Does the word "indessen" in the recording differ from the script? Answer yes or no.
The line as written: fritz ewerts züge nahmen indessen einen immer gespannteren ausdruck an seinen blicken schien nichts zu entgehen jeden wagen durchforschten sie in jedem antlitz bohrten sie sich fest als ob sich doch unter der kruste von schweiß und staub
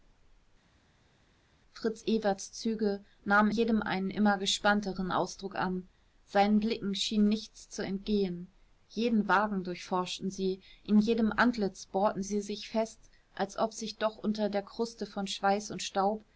yes